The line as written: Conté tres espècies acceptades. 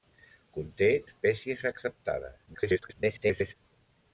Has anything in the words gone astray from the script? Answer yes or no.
yes